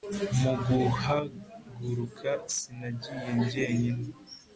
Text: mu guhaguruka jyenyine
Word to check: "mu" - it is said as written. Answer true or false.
true